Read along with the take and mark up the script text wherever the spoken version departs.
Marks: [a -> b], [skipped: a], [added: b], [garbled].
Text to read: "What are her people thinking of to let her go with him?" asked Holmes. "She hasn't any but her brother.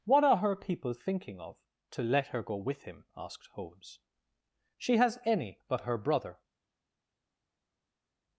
"What are her people thinking of to let her go with him?" asked Holmes. "She [hasn't -> has] any but her brother.